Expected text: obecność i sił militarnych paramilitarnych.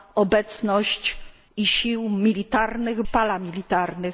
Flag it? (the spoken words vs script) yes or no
no